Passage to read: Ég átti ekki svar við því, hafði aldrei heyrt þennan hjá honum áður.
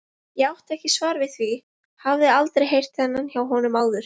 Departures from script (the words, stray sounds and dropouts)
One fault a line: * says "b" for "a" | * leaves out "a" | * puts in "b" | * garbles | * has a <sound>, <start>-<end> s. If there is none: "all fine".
all fine